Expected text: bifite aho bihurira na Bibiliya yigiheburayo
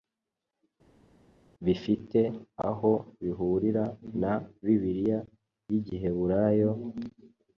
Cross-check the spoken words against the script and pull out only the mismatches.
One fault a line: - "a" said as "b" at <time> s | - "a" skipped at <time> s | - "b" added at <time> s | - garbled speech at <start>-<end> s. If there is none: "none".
none